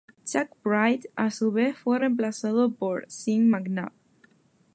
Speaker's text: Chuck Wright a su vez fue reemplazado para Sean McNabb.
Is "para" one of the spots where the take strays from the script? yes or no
yes